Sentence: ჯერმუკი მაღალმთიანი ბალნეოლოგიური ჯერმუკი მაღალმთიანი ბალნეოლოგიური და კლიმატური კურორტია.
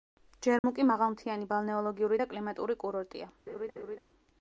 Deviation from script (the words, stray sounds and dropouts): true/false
true